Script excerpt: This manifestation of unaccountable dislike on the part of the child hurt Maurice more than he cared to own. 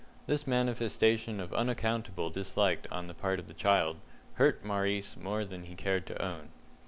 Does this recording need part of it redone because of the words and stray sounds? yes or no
no